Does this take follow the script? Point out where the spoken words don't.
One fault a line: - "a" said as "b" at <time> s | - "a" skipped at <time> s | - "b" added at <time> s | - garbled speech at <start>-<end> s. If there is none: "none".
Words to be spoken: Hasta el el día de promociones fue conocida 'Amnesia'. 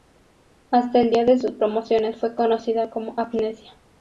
- "el" skipped at 1.1 s
- "sus" added at 1.4 s
- "como" added at 2.9 s